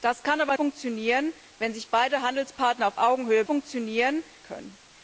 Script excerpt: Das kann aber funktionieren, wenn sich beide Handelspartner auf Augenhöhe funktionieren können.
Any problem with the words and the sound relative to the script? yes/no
no